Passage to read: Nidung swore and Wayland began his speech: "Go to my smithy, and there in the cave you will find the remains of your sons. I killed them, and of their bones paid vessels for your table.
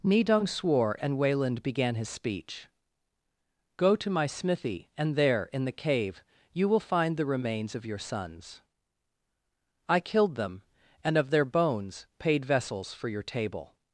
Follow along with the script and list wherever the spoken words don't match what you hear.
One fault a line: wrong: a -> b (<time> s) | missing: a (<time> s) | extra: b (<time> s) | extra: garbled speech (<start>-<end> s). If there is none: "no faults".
no faults